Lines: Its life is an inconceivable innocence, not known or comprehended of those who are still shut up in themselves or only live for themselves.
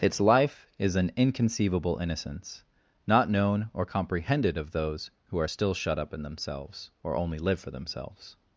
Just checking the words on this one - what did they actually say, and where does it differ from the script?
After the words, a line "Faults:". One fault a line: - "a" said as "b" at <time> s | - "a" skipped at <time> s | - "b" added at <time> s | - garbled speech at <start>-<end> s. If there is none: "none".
Its life is an inconceivable innocence, not known or comprehended of those who are still shut up in themselves or only live for themselves.
Faults:
none